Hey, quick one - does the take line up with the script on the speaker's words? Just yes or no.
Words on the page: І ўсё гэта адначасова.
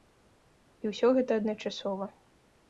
yes